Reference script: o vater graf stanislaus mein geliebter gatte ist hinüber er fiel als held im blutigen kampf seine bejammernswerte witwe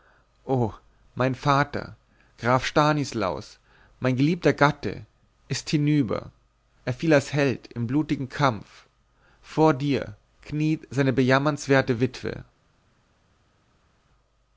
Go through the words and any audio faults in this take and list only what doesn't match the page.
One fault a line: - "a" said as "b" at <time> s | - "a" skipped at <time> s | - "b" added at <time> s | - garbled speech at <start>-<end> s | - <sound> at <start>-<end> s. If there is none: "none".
- "mein" added at 1.1 s
- "vor dir kniet" added at 9.4 s